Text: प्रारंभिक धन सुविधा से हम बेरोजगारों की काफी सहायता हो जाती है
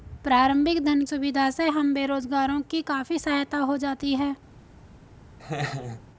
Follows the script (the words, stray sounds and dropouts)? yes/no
no